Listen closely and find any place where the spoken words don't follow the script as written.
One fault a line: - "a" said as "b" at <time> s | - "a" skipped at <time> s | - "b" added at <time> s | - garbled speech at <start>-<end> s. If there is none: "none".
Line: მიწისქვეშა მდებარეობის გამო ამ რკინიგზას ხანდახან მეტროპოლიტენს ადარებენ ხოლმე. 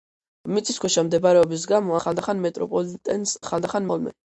- "ამ რკინიგზას" skipped at 2.0 s
- "ადარებენ" said as "ხანდახან" at 3.5 s